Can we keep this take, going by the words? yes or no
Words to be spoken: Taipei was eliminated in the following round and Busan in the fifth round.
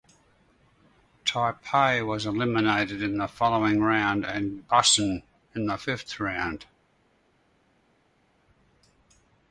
yes